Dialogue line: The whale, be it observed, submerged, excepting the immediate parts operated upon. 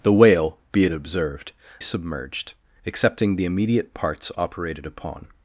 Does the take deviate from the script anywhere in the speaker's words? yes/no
no